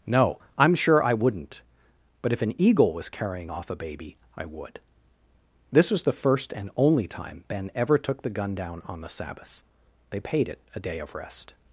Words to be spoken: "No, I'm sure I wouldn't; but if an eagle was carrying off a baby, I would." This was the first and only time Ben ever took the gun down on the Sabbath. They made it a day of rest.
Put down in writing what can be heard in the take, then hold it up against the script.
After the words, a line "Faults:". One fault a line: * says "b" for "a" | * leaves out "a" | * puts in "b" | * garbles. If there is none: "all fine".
"No, I'm sure I wouldn't; but if an eagle was carrying off a baby, I would." This was the first and only time Ben ever took the gun down on the Sabbath. They paid it a day of rest.
Faults:
* says "paid" for "made"